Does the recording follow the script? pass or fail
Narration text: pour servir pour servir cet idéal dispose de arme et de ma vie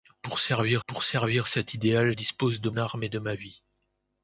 pass